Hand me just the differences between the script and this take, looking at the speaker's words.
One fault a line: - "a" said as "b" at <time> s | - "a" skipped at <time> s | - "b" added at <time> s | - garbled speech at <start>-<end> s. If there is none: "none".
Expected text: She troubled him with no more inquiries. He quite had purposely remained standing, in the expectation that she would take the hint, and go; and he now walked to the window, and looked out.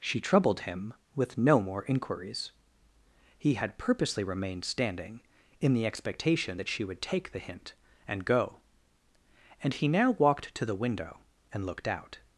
- "quite" skipped at 3.5 s